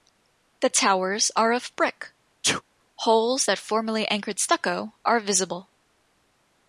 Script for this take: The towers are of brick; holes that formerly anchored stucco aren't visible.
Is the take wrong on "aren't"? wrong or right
wrong